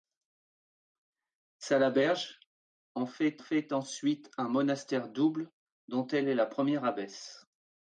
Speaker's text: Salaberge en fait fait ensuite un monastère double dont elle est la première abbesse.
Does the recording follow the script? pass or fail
pass